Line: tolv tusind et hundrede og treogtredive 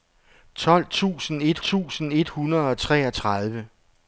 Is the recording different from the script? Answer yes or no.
yes